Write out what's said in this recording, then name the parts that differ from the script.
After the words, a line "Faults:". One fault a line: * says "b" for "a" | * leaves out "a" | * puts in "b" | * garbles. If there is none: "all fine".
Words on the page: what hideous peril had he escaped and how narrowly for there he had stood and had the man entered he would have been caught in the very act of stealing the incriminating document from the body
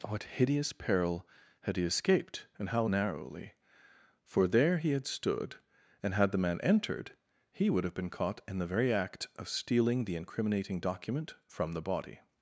what hideous peril had he escaped and how narrowly for there he had stood and had the man entered he would have been caught in the very act of stealing the incriminating document from the body
Faults:
all fine